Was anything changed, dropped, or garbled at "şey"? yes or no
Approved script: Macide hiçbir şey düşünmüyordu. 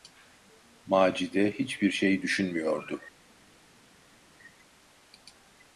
no